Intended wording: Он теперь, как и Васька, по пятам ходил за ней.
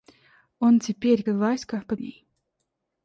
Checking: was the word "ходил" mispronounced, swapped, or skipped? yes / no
yes